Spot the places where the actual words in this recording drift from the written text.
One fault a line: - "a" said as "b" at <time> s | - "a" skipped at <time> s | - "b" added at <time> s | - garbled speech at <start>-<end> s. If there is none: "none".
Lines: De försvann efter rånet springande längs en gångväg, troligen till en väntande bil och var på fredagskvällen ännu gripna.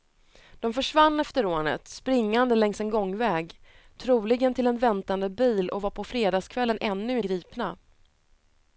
none